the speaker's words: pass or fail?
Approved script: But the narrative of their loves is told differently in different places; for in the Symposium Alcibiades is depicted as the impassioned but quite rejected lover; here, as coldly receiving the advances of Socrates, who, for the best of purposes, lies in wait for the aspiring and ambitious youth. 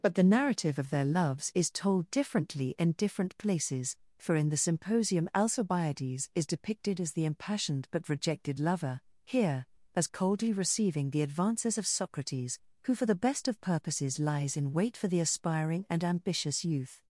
fail